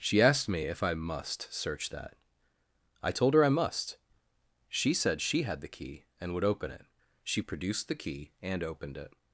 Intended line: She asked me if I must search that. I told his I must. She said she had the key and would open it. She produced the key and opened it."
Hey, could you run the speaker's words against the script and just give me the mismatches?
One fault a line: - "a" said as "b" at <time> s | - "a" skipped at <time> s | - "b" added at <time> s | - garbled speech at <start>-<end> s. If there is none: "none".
- "his" said as "her" at 3.3 s